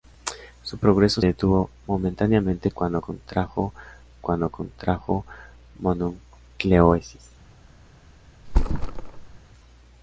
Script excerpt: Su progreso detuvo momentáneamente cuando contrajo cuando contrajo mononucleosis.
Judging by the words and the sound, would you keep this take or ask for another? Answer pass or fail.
fail